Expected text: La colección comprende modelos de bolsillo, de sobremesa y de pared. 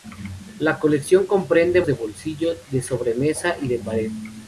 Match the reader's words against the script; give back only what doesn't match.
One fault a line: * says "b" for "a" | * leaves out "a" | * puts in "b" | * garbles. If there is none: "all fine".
* leaves out "modelos"